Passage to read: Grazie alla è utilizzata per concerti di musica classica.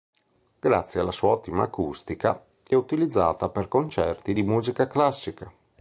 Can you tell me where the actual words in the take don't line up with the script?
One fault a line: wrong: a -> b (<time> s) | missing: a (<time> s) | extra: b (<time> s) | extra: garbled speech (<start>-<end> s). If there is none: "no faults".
extra: sua ottima acustica (1.1 s)